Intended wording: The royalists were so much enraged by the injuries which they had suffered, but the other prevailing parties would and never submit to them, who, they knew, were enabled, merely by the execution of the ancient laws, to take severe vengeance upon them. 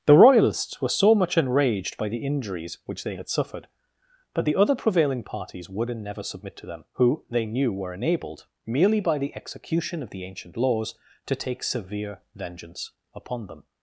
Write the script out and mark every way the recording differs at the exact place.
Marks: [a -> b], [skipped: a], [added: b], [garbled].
The royalists were so much enraged by the injuries which they had suffered, but the other prevailing parties would and never submit to them, who, they knew, were enabled, merely by the execution of the ancient laws, to take severe vengeance upon them.